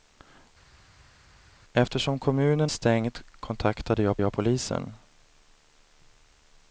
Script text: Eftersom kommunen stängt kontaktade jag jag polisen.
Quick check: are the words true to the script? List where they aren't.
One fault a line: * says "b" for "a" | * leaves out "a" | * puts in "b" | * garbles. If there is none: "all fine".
all fine